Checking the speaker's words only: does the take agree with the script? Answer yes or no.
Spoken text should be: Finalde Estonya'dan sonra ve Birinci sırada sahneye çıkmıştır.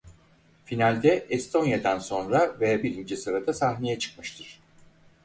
yes